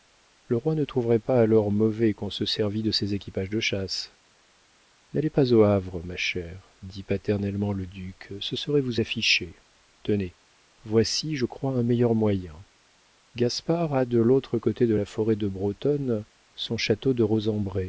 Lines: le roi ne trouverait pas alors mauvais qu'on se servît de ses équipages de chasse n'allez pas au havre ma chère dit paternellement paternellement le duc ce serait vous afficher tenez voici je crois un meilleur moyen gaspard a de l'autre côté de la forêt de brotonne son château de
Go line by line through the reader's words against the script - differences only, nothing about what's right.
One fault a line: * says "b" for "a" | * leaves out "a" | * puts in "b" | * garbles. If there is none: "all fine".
* leaves out "paternellement"